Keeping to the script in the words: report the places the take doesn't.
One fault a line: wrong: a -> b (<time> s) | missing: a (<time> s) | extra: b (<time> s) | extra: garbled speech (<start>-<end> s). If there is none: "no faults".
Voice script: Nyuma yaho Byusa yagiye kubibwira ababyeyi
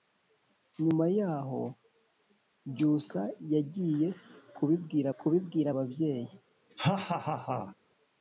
extra: kubibwira (5.2 s)